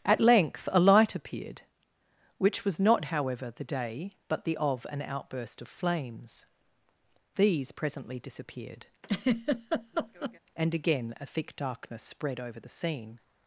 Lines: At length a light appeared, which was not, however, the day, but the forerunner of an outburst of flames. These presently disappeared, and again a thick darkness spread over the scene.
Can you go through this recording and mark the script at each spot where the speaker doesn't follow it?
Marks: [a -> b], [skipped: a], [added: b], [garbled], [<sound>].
At length a light appeared, which was not, however, the day, but the [skipped: forerunner] of an outburst of flames. These presently disappeared, [laugh] and again a thick darkness spread over the scene.